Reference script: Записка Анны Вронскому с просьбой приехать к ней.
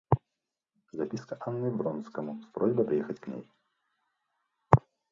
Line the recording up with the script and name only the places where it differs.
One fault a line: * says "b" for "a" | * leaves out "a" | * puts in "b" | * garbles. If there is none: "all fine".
all fine